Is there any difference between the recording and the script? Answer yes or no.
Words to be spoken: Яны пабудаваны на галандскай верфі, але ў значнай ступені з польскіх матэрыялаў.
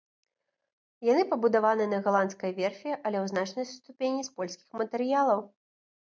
no